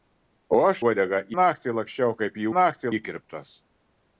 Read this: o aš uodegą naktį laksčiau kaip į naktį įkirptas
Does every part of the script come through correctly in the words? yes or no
yes